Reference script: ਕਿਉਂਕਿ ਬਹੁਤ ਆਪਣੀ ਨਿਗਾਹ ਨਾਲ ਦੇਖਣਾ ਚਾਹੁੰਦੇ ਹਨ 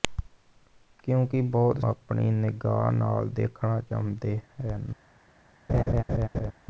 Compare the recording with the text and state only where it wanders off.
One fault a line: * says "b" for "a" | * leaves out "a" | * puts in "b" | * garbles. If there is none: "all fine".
all fine